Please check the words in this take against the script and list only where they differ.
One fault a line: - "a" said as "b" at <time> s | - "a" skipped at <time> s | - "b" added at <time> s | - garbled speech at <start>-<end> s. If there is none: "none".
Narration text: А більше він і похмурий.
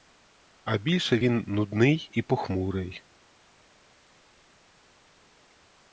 - "нудний" added at 1.5 s